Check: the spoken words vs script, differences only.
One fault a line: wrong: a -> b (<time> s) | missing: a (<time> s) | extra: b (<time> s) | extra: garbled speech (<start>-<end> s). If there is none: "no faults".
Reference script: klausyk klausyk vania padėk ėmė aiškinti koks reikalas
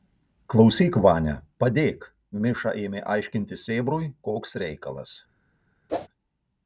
missing: klausyk (0.9 s)
extra: miša (2.5 s)
extra: sėbrui (3.7 s)